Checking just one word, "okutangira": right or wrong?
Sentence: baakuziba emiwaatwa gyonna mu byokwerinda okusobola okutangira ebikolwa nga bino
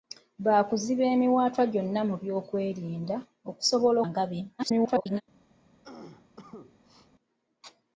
wrong